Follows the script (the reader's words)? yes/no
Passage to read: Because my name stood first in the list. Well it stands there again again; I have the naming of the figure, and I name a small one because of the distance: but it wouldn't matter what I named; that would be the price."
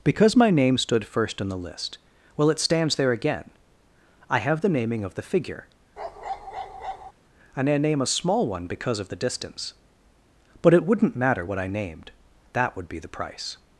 no